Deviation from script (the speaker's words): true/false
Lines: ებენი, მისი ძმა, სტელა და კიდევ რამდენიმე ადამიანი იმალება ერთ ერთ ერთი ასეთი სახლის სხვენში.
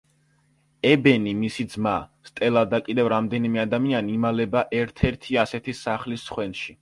true